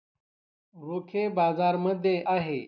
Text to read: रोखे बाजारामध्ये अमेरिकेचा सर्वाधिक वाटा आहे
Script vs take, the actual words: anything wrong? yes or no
yes